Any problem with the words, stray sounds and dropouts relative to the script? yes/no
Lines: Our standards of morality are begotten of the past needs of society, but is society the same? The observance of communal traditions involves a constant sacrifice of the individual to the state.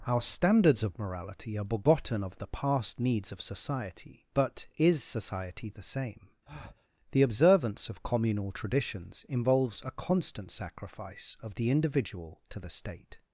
yes